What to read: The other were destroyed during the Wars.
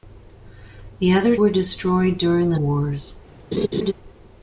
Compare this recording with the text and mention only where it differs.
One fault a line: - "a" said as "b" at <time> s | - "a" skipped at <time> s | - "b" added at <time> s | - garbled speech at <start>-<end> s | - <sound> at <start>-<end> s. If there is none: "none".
- laugh at 3.5-3.9 s